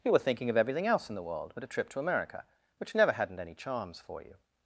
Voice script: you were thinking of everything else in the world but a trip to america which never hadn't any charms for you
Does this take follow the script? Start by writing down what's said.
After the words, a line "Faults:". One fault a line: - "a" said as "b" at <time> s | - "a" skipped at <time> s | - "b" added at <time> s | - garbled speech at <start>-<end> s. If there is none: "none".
you were thinking of everything else in the world but a trip to america which never hadn't any charms for you
Faults:
none